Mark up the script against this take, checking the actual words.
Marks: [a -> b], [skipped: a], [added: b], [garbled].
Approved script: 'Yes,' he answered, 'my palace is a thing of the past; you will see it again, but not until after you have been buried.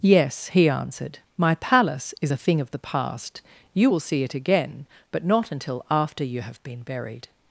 'Yes,' he answered, 'my palace is a thing of the past; you will see it again, but not until after you have been buried.